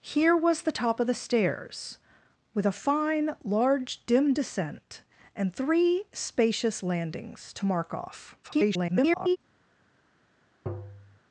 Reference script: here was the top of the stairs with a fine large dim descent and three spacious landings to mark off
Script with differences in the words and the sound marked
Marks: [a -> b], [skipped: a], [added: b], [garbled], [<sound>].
here was the top of the stairs with a fine large dim descent and three spacious landings to mark off [garbled] [tap]